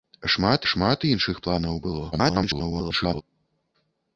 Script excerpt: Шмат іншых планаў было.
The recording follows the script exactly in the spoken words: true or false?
false